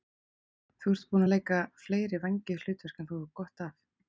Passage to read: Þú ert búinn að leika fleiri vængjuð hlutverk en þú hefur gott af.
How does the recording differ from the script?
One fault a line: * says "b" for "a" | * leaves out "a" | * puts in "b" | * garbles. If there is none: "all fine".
all fine